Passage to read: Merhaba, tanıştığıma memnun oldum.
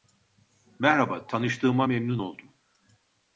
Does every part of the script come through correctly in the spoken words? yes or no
yes